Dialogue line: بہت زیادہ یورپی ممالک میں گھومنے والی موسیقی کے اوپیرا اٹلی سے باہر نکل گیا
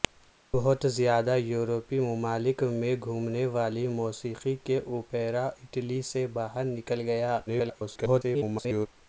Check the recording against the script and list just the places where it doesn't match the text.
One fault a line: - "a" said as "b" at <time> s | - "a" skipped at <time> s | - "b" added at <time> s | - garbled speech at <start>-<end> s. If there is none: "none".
- garbled speech at 7.5-8.9 s